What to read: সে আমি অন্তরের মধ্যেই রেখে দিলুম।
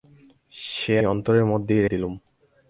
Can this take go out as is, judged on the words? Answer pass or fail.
fail